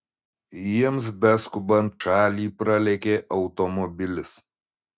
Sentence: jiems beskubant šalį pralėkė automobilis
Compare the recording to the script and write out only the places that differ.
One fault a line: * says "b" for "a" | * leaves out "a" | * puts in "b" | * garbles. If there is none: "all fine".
all fine